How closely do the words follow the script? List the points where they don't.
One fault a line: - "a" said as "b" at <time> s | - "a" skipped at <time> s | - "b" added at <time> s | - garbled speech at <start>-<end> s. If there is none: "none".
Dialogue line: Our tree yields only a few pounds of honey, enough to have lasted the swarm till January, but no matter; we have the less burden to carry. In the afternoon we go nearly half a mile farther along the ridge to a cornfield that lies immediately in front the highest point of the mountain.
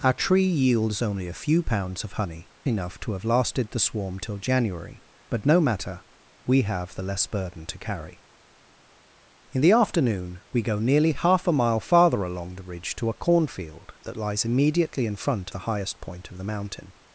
none